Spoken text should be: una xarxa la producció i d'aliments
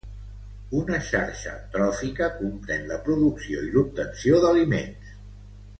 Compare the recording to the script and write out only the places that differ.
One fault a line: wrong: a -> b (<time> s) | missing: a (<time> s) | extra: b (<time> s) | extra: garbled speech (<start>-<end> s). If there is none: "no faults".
extra: tròfica comprèn (1.8 s)
extra: l'obtenció (3.8 s)